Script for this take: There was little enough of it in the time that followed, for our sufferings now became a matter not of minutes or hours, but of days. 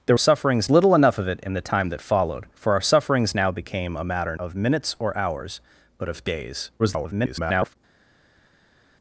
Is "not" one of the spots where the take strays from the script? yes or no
yes